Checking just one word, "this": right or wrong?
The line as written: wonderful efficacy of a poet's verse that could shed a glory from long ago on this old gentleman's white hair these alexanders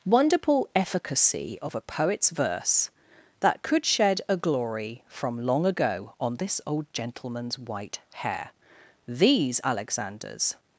right